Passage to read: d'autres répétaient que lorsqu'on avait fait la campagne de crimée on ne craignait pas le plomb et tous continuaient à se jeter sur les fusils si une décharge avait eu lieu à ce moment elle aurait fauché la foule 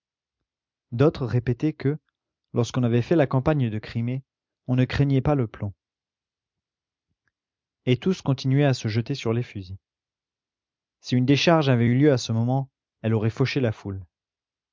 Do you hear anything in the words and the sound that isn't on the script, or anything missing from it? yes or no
no